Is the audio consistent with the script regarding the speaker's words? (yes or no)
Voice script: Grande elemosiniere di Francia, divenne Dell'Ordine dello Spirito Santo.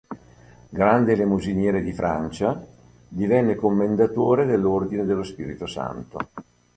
no